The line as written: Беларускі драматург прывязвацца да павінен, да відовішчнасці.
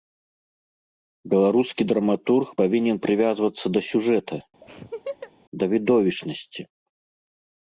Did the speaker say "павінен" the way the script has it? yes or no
no